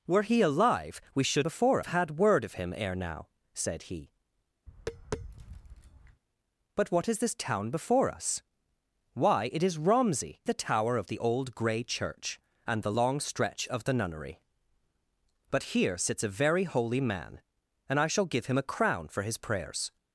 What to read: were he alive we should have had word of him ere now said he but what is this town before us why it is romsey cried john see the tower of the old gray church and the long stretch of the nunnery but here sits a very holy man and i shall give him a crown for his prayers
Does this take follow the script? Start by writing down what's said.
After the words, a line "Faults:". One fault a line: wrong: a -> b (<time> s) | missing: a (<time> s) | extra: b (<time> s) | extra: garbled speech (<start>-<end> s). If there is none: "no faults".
were he alive we should before had word of him ere now said he but what is this town before us why it is romsey the tower of the old gray church and the long stretch of the nunnery but here sits a very holy man and i shall give him a crown for his prayers
Faults:
wrong: have -> before (1.4 s)
missing: cried john see (10.4 s)